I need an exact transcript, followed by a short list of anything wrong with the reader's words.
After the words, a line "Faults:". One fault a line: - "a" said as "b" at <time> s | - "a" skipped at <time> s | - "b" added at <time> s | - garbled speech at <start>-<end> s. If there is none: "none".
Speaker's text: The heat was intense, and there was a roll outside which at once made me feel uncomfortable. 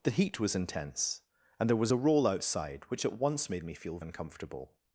The heat was intense, and there was a roll outside which at once made me feel uncomfortable.
Faults:
none